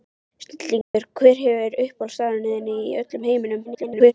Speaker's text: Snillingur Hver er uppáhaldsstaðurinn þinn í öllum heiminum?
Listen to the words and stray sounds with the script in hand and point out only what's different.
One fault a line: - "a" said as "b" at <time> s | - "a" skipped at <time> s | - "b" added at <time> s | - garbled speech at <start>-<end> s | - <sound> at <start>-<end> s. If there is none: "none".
- dropout at 0.8-0.9 s
- garbled speech at 3.6-4.1 s